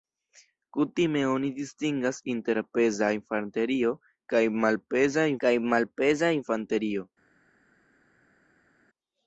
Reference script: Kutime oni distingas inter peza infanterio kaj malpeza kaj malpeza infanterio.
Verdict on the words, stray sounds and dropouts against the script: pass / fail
pass